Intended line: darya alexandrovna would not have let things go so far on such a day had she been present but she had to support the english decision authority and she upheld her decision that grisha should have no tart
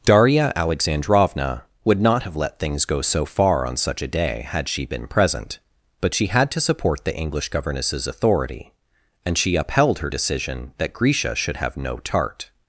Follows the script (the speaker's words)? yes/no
no